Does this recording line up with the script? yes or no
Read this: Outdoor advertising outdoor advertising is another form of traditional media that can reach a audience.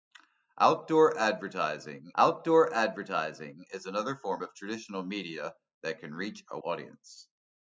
yes